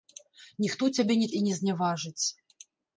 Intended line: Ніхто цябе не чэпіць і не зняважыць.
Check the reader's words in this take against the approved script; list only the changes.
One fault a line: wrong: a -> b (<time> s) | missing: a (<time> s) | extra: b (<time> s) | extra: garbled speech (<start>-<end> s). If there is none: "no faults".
missing: чэпіць (1.3 s)